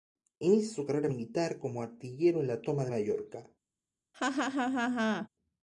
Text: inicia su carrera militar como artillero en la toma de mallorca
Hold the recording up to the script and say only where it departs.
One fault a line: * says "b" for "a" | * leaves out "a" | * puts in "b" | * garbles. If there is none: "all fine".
all fine